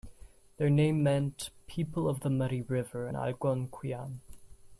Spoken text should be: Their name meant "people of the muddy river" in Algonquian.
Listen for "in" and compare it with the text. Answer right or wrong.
wrong